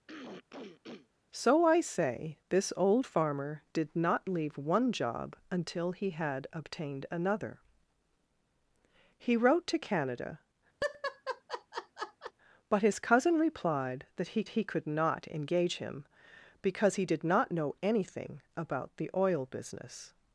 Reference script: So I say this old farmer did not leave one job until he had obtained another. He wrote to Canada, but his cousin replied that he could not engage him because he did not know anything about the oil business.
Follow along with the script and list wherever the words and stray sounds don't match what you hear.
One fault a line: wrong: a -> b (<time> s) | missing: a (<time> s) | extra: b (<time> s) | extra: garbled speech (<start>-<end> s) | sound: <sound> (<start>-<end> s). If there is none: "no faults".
sound: throat clearing (0.1-1.1 s)
sound: laugh (10.8-12.3 s)
extra: he (14.5 s)